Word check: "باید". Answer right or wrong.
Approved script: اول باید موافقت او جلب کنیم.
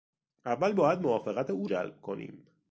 right